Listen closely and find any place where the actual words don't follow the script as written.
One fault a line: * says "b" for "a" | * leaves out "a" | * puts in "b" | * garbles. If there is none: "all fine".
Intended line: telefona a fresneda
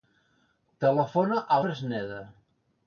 all fine